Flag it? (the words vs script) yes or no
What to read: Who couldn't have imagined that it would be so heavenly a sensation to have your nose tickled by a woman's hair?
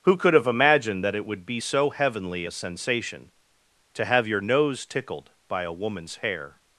yes